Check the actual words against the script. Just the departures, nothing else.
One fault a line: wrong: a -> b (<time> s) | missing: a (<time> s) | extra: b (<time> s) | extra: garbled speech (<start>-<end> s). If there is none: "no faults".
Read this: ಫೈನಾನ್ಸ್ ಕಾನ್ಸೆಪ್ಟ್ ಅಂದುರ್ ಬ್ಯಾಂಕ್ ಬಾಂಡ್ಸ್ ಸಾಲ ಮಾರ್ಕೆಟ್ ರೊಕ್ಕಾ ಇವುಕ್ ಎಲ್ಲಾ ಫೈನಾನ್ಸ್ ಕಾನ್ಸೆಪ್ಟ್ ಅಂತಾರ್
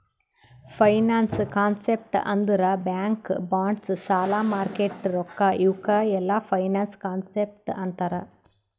no faults